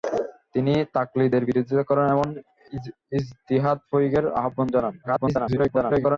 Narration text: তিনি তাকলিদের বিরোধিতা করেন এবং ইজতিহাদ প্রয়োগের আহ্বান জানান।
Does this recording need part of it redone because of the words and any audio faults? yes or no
yes